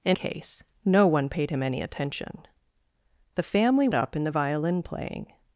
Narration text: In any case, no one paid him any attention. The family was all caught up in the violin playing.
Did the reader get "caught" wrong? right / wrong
wrong